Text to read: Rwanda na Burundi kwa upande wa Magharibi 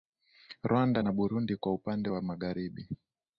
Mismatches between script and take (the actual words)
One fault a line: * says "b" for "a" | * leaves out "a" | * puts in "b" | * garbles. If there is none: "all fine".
all fine